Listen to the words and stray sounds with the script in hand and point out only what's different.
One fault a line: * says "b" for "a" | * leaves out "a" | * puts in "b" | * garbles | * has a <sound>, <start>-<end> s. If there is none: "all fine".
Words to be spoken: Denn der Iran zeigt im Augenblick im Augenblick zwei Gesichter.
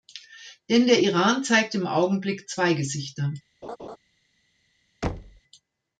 * leaves out "im Augenblick"
* has a laugh, 3.6-4.0 s
* has a thud, 5.0-5.4 s